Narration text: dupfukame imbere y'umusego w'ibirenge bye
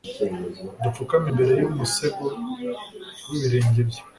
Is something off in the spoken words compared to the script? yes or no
no